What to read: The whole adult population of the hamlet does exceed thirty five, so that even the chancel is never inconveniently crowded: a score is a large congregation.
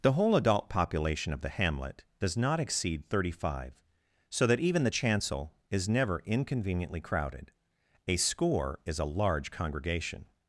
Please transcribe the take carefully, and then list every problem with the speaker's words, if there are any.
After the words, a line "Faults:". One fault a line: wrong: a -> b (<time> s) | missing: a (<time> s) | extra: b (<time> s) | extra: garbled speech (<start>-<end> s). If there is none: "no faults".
The whole adult population of the hamlet does not exceed thirty five, so that even the chancel is never inconveniently crowded: a score is a large congregation.
Faults:
extra: not (2.4 s)